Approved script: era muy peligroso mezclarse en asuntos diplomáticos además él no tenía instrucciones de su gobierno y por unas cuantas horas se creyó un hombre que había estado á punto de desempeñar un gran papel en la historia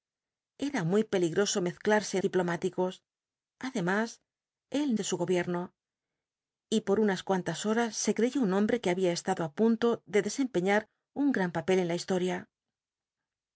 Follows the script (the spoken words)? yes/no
no